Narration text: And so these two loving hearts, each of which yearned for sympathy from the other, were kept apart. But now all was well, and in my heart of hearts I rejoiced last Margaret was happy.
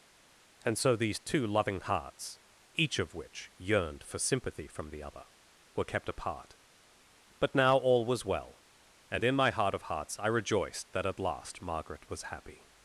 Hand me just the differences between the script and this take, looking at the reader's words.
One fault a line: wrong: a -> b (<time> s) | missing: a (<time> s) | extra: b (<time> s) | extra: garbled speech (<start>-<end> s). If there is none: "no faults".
extra: that at (10.9 s)